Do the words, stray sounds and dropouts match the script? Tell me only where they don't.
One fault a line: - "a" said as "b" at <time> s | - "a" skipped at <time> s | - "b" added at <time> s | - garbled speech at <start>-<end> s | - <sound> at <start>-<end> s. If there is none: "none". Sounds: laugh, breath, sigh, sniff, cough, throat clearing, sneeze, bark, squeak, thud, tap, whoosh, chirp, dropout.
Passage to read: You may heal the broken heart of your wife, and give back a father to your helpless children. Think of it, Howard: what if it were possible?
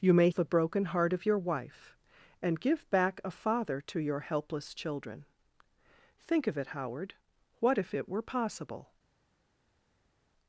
- "heal" skipped at 0.3 s